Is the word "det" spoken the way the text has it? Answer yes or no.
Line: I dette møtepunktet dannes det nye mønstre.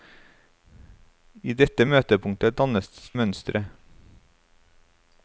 no